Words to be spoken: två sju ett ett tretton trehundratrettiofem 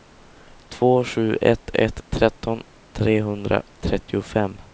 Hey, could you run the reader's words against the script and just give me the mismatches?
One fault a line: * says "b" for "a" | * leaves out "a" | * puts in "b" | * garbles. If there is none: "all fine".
all fine